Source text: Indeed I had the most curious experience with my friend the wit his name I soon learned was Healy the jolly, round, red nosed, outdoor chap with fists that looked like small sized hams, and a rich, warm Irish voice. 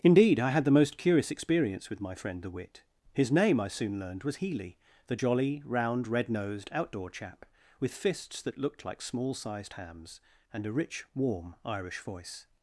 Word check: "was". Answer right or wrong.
right